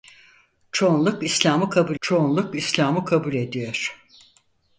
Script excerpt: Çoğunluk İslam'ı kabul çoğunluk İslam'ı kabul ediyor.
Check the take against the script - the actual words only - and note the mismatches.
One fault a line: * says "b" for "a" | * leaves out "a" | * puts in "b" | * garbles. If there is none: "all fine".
all fine